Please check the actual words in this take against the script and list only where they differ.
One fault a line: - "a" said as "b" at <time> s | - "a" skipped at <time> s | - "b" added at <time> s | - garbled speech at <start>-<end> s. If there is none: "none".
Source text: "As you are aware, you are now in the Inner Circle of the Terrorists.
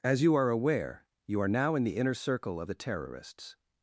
none